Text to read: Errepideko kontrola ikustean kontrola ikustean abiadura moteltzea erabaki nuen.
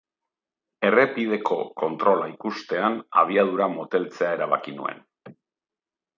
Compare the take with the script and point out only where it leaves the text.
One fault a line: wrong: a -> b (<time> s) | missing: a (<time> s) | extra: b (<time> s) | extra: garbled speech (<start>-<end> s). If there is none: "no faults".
missing: kontrola ikustean (3.0 s)